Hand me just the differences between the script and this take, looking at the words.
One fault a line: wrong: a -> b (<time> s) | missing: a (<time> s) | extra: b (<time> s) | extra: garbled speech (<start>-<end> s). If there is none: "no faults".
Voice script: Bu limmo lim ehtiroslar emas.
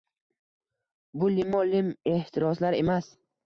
no faults